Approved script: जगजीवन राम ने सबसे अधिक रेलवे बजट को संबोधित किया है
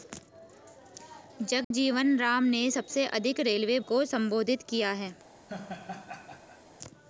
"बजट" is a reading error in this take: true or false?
true